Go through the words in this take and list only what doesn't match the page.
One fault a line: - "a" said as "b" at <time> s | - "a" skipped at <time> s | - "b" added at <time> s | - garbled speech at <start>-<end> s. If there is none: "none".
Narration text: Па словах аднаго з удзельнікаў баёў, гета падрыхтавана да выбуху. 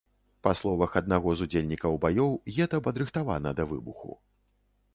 none